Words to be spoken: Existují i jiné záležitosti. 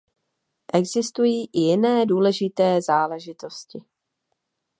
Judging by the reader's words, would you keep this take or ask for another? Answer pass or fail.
fail